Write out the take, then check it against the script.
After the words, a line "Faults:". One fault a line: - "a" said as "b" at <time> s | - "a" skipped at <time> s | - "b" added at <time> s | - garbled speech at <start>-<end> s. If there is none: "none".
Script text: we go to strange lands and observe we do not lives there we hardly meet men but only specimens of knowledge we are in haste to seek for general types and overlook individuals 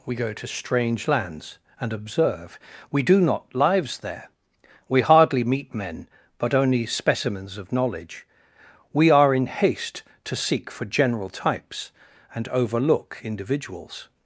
we go to strange lands and observe we do not lives there we hardly meet men but only specimens of knowledge we are in haste to seek for general types and overlook individuals
Faults:
none